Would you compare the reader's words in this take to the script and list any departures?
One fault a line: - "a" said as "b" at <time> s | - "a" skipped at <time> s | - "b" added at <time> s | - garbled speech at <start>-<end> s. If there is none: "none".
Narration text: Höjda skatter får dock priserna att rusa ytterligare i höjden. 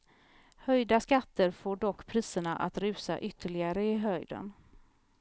none